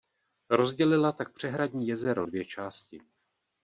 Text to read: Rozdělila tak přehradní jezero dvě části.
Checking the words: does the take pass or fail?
pass